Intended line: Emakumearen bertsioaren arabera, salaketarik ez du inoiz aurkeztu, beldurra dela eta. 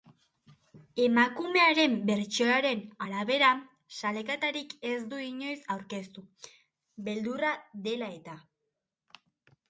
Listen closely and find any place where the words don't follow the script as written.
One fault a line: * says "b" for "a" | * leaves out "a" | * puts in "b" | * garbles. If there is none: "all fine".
all fine